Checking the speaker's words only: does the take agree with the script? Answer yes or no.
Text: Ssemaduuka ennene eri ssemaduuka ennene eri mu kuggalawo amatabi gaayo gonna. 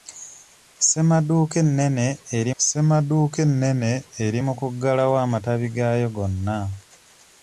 yes